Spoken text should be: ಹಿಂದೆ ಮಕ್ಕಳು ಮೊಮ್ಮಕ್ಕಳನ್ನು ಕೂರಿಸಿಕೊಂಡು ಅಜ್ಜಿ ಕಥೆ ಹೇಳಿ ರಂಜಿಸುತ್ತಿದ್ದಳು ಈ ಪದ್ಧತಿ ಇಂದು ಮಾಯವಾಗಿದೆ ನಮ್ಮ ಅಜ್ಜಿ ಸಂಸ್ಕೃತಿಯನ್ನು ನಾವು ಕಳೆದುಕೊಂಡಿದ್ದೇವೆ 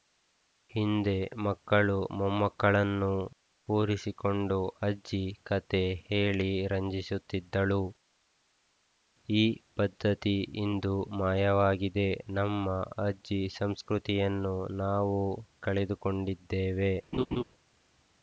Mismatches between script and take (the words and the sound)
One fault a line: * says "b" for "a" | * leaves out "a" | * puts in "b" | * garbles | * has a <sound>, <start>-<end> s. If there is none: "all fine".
* has a laugh, 17.1-17.4 s